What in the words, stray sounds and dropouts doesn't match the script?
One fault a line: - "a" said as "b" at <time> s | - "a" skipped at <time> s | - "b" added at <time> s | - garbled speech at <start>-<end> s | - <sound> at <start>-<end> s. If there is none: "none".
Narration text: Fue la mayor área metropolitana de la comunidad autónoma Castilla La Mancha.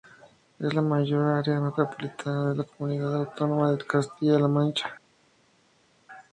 - "Fue" said as "Es" at 0.6 s
- "de" added at 3.7 s